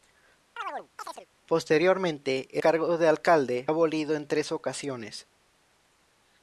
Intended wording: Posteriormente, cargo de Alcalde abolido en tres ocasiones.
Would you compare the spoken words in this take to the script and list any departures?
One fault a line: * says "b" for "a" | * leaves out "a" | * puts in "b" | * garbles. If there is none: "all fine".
all fine